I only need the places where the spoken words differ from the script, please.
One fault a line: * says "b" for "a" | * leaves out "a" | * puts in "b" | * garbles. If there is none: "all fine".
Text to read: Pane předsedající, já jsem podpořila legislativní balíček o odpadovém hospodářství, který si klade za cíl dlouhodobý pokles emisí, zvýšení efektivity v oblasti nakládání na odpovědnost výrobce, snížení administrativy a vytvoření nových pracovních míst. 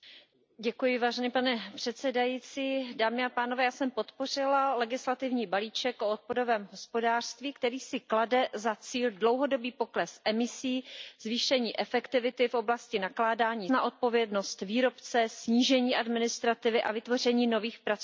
all fine